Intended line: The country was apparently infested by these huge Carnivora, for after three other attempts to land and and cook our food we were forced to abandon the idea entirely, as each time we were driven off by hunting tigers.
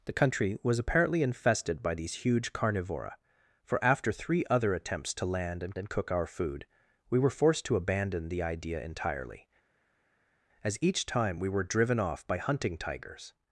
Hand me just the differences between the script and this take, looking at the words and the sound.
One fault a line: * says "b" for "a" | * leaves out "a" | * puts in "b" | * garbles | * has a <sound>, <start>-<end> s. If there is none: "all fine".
all fine